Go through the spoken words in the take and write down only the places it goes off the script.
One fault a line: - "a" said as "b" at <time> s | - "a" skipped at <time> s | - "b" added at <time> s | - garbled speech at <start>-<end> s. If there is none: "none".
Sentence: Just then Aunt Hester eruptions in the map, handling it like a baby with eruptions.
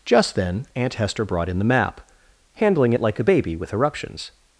- "eruptions" said as "brought" at 1.2 s